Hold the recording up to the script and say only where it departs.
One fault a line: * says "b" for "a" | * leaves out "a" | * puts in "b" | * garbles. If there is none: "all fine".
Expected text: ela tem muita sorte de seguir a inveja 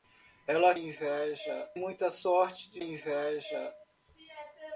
* says "inveja" for "tem"
* leaves out "seguir a"